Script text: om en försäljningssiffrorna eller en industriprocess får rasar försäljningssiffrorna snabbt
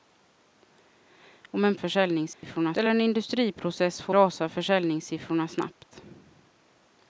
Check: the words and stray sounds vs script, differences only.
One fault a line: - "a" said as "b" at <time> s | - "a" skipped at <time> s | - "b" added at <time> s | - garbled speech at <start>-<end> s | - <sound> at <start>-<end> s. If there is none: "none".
- dropout at 2.3-2.4 s